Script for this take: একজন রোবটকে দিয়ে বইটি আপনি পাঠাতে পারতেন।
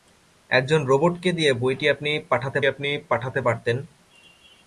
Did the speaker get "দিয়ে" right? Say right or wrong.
right